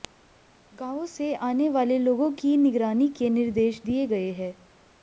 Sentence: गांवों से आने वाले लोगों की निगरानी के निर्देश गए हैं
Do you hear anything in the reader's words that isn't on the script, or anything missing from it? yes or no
yes